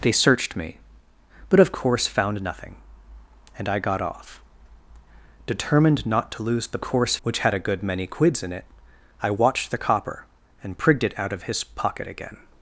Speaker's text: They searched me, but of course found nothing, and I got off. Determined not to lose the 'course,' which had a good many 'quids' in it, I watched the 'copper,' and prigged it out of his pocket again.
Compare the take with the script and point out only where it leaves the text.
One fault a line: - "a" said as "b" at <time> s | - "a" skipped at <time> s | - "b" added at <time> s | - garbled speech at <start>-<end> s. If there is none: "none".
none